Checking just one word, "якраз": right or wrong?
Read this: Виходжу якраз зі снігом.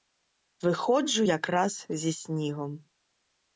right